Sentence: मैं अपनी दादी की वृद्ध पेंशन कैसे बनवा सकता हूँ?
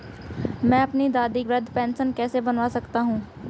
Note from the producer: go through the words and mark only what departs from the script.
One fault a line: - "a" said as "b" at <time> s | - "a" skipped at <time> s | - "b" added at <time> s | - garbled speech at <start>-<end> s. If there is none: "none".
- "की" skipped at 1.4 s